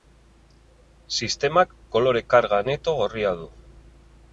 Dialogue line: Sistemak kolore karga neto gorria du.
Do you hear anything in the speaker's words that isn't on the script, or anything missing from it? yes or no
no